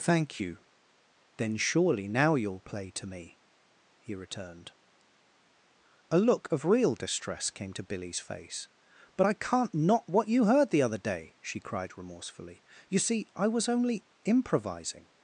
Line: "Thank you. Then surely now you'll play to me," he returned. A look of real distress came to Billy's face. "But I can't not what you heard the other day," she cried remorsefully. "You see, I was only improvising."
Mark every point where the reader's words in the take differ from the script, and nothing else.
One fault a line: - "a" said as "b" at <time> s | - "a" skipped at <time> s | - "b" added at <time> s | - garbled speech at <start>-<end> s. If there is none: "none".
none